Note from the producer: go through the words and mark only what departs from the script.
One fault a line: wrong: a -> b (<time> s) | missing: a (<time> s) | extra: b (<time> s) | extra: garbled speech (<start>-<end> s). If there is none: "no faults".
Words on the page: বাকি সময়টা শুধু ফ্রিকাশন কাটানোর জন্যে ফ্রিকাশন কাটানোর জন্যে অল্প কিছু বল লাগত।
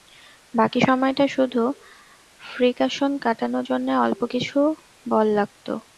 missing: ফ্রিকাশন কাটানোর জন্যে (3.9 s)